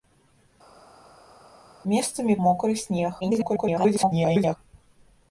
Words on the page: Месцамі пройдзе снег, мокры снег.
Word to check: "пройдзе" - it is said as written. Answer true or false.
false